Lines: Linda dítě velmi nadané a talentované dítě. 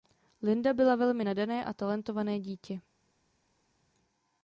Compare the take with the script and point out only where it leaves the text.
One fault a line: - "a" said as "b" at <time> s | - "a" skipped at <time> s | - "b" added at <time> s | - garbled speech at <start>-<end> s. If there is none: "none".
- "dítě" said as "byla" at 0.7 s